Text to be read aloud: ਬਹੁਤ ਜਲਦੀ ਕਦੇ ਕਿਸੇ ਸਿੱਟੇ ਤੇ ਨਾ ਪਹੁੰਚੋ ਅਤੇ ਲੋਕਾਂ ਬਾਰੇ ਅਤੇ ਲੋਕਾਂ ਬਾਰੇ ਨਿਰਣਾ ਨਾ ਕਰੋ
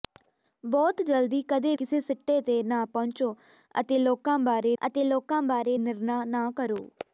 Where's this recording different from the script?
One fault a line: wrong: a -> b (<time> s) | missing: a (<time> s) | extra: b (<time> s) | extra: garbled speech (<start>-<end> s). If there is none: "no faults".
no faults